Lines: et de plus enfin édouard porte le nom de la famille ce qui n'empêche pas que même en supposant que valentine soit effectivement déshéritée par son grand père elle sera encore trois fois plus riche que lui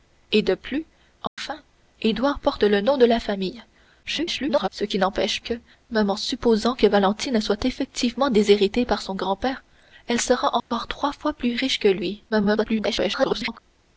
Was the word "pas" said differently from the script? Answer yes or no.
yes